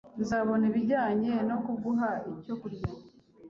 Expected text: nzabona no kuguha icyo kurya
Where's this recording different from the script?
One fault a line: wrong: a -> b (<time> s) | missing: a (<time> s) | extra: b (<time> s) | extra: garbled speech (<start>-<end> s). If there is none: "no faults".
extra: ibijyanye (0.7 s)